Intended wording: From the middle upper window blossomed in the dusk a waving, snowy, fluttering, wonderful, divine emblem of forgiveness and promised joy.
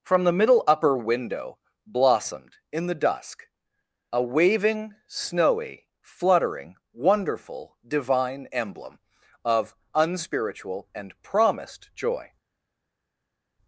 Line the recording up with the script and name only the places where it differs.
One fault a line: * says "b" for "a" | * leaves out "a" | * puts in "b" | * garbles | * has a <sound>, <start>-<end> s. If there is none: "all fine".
* says "unspiritual" for "forgiveness"